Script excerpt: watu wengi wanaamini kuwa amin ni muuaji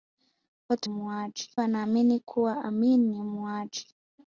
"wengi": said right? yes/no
no